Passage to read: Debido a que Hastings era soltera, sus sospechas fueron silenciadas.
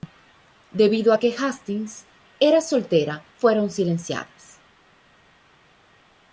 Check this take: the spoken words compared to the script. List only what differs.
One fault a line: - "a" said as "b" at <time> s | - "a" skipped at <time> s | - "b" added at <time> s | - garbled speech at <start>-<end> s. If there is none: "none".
- "sus sospechas" skipped at 3.2 s